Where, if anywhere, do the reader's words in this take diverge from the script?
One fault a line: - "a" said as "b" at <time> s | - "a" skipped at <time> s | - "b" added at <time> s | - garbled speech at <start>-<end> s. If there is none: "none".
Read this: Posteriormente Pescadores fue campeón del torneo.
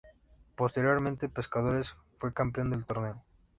none